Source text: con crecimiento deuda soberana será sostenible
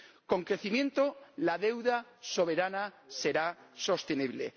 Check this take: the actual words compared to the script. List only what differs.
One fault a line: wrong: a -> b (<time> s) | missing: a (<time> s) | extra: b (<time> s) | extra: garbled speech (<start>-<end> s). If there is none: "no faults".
extra: la (1.4 s)